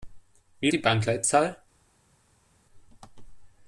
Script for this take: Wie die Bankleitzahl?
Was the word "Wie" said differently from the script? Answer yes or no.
no